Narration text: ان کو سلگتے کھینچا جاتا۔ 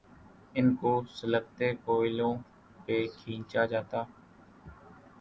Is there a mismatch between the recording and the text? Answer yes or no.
yes